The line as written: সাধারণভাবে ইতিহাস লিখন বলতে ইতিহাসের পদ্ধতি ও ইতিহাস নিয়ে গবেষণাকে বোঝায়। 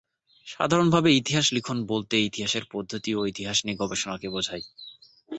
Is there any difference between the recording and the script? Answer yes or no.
no